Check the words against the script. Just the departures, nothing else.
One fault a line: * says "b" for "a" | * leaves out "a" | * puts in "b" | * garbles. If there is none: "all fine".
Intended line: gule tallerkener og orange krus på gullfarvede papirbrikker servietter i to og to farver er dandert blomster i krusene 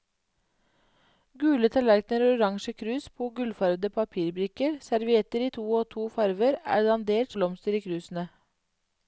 all fine